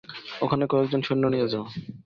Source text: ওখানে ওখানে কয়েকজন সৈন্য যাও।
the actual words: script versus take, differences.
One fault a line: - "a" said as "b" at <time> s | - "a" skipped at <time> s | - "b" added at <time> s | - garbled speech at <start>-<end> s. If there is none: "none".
- "ওখানে" skipped at 0.6 s
- "নিয়ে" added at 1.3 s